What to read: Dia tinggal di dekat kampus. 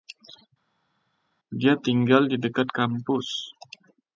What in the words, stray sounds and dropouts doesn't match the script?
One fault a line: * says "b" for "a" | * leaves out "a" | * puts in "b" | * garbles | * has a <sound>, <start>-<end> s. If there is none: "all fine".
all fine